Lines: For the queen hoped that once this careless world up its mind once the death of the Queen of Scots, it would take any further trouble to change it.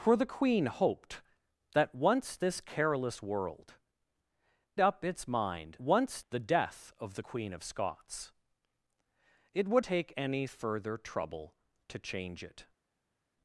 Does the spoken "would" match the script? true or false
true